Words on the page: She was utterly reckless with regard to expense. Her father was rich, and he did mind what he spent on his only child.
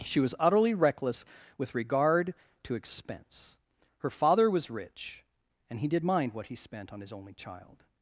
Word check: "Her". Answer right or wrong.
right